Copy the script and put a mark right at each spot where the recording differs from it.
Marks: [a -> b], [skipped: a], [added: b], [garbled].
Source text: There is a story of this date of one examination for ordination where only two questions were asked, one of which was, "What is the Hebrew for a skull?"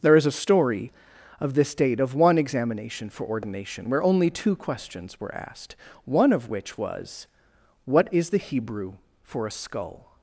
There is a story of this date of one examination for ordination where only two questions were asked, one of which was, "What is the Hebrew for a skull?"